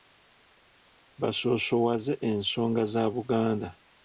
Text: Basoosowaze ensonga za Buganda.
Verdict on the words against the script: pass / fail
pass